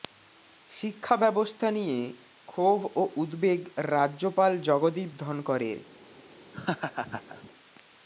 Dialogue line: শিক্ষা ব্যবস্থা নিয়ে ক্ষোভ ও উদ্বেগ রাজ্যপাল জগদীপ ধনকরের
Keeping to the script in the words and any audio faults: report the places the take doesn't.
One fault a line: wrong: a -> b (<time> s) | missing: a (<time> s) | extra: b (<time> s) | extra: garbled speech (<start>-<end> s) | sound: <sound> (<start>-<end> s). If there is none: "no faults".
sound: laugh (6.5-7.5 s)